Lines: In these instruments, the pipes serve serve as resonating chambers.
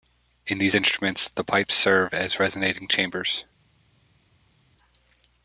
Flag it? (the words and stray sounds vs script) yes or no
yes